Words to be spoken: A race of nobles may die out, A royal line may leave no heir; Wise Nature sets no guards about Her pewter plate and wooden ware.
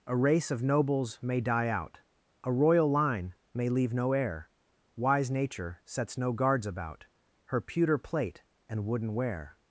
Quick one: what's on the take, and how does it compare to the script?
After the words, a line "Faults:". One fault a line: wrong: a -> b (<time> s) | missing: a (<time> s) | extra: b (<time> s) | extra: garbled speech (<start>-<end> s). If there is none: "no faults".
A race of nobles may die out, A royal line may leave no heir; Wise Nature sets no guards about Her pewter plate and wooden ware.
Faults:
no faults